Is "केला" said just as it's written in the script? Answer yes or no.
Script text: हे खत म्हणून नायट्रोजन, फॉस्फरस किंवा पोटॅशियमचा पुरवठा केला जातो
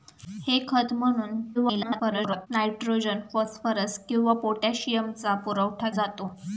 no